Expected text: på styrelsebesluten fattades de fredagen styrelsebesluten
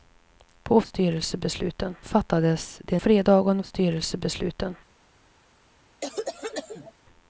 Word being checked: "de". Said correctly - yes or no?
yes